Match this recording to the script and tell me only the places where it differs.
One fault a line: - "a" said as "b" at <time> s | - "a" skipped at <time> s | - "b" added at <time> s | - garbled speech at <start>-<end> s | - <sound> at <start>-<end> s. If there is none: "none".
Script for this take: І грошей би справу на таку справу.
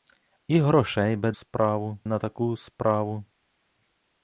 none